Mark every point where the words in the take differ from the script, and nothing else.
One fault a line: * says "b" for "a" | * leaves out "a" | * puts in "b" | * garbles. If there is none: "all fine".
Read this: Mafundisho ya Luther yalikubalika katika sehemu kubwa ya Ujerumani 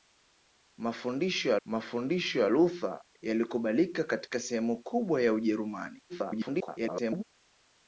* puts in "mafundisho ya"
* garbles